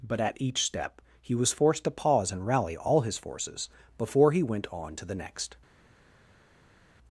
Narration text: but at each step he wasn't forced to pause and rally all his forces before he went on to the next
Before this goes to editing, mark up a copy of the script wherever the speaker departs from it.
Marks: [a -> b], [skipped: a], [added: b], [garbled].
but at each step he [wasn't -> was] forced to pause and rally all his forces before he went on to the next